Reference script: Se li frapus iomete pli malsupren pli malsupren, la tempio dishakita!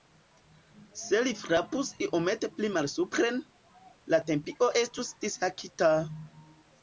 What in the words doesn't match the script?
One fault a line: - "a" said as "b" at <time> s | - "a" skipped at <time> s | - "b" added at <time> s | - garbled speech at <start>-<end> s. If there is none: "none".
- "pli malsupren" skipped at 3.4 s
- "estus" added at 4.8 s